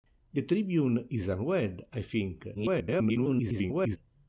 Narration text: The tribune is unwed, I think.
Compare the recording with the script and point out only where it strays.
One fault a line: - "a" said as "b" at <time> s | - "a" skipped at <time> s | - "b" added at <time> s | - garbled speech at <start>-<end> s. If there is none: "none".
- garbled speech at 2.5-4.0 s